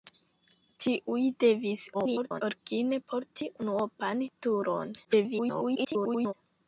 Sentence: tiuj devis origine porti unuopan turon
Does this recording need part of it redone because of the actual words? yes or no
yes